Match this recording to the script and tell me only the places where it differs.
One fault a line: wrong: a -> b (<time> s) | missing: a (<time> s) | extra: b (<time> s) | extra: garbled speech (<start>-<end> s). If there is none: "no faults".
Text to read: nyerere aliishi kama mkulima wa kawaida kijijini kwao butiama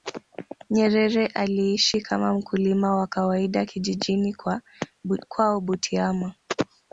no faults